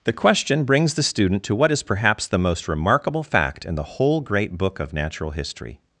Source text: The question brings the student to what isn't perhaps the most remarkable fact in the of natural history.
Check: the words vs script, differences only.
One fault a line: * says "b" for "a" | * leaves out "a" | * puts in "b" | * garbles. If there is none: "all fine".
* says "is" for "isn't"
* puts in "whole great book"